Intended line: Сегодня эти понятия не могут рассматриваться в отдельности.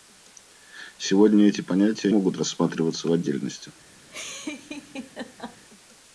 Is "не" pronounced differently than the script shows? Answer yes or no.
yes